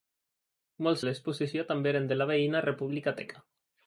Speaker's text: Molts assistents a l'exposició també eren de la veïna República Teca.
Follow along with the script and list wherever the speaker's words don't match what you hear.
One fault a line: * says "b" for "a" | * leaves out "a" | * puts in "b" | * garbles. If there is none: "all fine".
* leaves out "assistents"